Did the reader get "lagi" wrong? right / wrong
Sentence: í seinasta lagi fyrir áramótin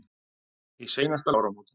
wrong